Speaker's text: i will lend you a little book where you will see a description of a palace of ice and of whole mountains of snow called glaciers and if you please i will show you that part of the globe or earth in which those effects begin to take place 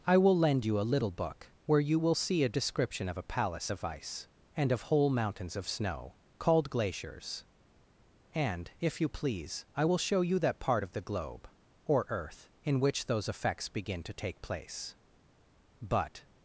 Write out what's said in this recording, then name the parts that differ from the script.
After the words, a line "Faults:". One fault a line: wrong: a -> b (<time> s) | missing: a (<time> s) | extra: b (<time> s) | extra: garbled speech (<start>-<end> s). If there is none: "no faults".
i will lend you a little book where you will see a description of a palace of ice and of whole mountains of snow called glaciers and if you please i will show you that part of the globe or earth in which those effects begin to take place but
Faults:
extra: but (15.8 s)